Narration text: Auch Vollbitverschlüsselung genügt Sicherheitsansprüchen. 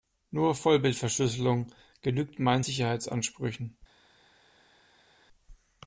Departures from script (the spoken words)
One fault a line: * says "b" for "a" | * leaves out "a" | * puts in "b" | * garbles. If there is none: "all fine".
* says "Nur" for "Auch"
* puts in "meinen"